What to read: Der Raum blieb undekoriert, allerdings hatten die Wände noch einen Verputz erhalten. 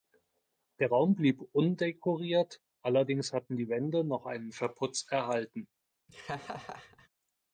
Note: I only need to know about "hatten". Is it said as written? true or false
true